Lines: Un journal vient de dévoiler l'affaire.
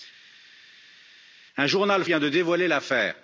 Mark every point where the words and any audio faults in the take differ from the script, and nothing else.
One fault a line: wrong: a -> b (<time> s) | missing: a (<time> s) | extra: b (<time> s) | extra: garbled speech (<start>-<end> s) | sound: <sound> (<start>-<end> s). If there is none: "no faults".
no faults